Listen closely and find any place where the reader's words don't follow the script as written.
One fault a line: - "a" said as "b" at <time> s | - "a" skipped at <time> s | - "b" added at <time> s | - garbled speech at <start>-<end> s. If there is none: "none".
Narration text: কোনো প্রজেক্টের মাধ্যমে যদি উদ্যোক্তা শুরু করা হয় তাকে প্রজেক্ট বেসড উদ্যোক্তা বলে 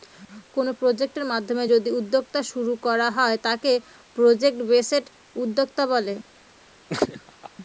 none